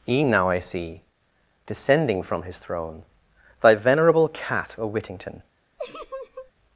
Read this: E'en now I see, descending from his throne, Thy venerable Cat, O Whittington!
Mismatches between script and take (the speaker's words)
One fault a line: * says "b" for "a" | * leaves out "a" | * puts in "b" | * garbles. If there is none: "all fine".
all fine